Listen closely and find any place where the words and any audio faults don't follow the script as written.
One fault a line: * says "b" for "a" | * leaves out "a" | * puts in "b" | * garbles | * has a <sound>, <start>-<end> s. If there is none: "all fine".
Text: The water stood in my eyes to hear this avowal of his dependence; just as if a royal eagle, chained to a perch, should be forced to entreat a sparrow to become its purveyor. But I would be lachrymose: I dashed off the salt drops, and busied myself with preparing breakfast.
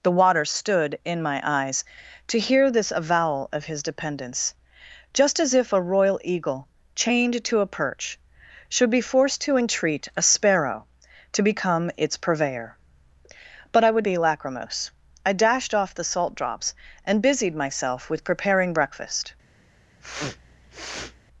* has a sniff, 20.0-21.2 s